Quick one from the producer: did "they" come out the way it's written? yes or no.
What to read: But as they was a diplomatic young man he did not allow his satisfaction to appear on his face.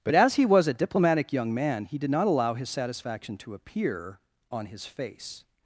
no